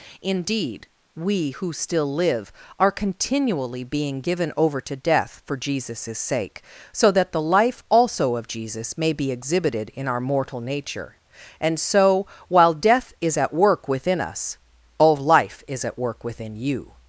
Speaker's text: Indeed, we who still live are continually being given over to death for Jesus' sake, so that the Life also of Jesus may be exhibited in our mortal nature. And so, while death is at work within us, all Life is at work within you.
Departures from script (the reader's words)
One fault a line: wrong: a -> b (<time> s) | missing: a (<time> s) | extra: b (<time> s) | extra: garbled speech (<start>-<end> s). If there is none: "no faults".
no faults